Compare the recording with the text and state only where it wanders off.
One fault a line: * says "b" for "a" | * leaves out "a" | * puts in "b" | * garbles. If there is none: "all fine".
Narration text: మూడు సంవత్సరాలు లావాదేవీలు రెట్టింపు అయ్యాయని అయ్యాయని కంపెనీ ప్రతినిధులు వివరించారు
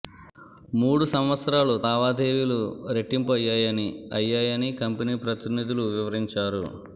all fine